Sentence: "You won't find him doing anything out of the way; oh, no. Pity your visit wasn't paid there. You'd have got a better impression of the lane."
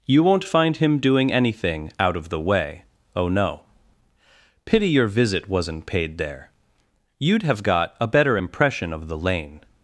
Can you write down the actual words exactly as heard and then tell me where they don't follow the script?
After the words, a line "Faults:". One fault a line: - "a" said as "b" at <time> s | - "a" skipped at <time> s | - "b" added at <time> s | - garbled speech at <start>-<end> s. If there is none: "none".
"You won't find him doing anything out of the way; oh, no. Pity your visit wasn't paid there. You'd have got a better impression of the lane."
Faults:
none